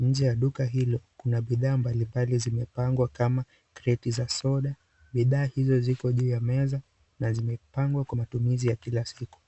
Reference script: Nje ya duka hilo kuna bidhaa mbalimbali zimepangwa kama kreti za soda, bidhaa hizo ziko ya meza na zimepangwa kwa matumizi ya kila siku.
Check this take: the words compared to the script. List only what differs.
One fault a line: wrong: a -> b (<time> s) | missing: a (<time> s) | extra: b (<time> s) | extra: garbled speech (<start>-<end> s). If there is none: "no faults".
extra: juu (6.1 s)